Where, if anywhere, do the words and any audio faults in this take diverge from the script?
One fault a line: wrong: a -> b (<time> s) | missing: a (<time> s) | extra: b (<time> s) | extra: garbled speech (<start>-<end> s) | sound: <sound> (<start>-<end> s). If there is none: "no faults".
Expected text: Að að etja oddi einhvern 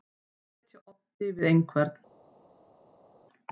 missing: að (0.7 s)
extra: við (1.4 s)